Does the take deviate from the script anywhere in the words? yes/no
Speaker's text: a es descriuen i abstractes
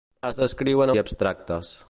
no